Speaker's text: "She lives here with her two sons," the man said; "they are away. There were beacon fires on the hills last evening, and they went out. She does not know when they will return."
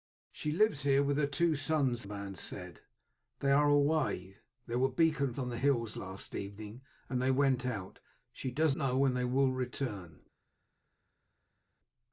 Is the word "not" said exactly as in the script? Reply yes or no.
no